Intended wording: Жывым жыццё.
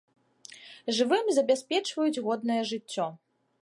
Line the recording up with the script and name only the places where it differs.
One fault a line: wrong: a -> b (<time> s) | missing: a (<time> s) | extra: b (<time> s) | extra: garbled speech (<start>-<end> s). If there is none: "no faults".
extra: забяспечваюць годнае (1.4 s)